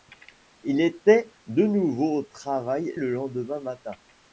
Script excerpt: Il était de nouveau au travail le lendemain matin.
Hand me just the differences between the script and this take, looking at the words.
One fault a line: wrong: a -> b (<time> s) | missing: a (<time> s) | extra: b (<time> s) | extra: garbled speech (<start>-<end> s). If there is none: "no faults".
no faults